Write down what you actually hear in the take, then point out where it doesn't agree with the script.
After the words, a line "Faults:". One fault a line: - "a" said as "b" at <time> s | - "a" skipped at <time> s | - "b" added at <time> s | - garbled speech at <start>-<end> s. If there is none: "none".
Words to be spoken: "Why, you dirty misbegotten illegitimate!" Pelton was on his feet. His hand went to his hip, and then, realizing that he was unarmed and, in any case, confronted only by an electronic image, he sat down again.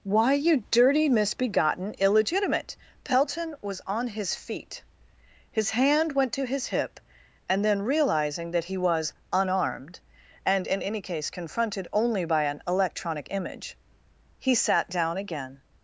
"Why, you dirty misbegotten illegitimate!" Pelton was on his feet. His hand went to his hip, and then, realizing that he was unarmed and, in any case, confronted only by an electronic image, he sat down again.
Faults:
none